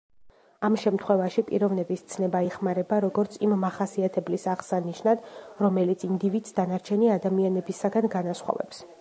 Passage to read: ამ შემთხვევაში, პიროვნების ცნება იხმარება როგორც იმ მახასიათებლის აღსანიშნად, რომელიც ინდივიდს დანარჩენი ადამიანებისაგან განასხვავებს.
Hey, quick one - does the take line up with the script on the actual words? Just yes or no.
yes